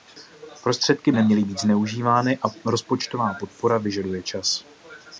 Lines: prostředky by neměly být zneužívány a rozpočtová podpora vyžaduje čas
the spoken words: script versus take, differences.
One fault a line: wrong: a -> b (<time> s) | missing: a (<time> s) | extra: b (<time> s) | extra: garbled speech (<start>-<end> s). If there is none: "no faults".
missing: by (1.1 s)